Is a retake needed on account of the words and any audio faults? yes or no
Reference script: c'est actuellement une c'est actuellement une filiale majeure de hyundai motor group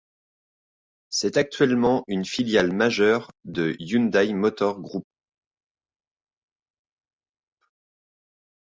yes